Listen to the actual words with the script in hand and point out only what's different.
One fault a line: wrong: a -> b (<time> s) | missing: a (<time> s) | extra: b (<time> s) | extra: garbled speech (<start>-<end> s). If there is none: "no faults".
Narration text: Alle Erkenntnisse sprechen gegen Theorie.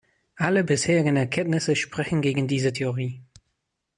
extra: bisherigen (0.6 s)
extra: diese (2.5 s)